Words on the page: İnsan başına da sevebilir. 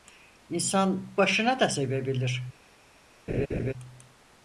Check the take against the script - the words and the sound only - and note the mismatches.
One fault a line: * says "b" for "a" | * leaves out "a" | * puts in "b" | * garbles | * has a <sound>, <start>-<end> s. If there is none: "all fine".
* has a laugh, 3.3-3.7 s